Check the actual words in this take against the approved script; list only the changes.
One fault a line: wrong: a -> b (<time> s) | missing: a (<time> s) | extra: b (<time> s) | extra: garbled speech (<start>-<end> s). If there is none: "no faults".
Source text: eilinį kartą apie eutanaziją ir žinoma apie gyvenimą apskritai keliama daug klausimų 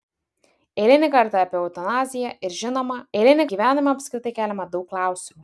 wrong: apie -> eilinį (3.2 s)